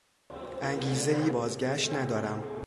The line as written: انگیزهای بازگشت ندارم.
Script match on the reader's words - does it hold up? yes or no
yes